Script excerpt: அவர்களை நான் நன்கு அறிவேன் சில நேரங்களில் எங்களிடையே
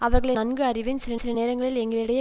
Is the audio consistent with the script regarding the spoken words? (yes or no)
no